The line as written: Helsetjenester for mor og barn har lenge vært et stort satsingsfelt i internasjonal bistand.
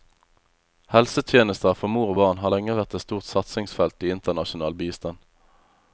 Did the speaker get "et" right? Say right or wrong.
right